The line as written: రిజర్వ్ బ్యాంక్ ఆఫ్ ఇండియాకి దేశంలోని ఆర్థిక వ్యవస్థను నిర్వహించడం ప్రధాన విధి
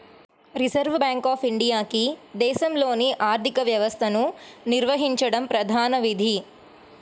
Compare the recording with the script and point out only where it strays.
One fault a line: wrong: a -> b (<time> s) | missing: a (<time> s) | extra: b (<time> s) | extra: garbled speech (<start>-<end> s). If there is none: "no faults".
no faults